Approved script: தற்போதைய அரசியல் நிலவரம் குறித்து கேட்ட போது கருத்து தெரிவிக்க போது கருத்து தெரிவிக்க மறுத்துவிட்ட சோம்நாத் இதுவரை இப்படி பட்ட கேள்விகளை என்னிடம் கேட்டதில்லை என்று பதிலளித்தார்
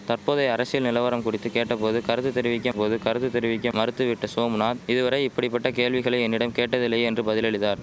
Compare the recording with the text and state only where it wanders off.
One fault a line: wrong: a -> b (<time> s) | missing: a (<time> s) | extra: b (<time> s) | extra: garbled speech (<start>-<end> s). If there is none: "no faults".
no faults